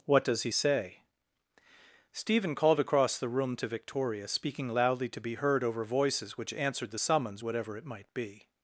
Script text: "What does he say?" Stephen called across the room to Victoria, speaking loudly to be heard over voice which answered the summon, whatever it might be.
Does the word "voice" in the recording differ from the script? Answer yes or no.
yes